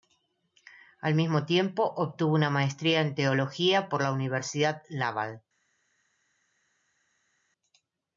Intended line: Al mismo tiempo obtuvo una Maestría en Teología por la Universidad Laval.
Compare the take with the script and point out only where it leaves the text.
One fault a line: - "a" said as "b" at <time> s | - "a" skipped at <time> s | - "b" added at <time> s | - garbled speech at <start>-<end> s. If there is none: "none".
none